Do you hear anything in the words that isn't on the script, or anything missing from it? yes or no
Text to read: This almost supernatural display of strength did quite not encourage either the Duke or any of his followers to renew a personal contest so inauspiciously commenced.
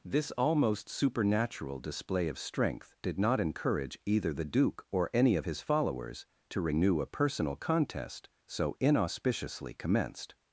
yes